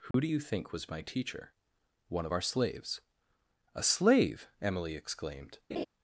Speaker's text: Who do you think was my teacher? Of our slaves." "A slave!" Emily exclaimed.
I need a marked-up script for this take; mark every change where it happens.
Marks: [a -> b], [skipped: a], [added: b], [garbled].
Who do you think was my teacher? [added: One] Of our slaves." "A slave!" Emily exclaimed.